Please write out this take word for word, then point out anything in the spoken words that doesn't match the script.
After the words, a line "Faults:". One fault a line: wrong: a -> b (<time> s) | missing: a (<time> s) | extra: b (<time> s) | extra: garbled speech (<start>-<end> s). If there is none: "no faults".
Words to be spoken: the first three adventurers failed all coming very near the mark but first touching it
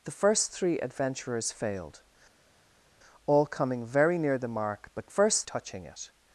the first three adventurers failed all coming very near the mark but first touching it
Faults:
no faults